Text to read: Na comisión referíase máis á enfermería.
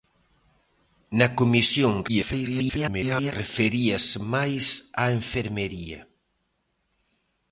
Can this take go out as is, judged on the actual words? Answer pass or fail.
fail